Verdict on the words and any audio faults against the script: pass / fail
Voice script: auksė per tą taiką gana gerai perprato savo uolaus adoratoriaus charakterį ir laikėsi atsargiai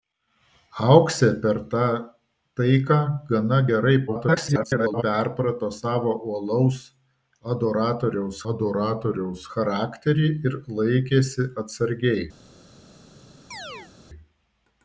fail